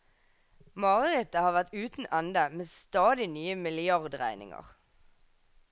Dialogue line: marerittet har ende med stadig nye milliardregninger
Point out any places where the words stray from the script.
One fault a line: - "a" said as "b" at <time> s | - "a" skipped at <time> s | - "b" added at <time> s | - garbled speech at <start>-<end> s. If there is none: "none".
- "vært uten" added at 1.6 s